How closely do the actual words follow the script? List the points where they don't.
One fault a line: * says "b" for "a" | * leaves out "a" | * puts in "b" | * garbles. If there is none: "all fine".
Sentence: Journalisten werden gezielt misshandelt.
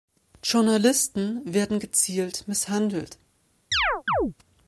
all fine